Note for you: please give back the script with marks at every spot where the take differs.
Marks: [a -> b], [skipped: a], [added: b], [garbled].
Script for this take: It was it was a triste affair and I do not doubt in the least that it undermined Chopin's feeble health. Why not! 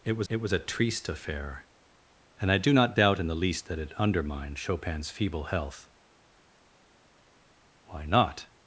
It was it was a triste affair and I do not doubt in the least that it undermined Chopin's feeble health. Why not!